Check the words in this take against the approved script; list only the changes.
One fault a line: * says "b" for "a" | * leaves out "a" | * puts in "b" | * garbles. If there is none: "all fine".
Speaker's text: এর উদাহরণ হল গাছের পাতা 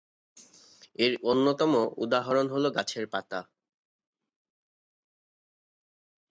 * puts in "অন্যতম"